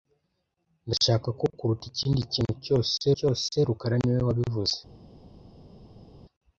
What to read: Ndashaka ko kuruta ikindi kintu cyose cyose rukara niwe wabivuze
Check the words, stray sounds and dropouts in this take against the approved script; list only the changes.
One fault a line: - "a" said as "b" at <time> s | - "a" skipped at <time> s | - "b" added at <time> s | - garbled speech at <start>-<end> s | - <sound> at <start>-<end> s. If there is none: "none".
none